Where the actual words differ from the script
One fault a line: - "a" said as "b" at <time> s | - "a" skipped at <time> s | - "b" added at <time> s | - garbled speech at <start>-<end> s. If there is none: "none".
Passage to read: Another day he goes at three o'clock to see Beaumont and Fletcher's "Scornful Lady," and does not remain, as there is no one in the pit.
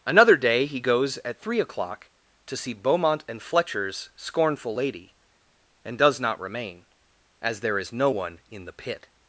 none